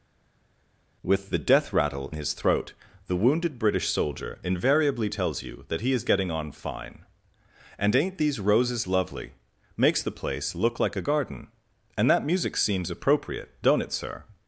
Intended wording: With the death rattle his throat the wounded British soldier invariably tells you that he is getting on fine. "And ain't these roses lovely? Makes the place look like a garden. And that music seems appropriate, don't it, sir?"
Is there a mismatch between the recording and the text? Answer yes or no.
no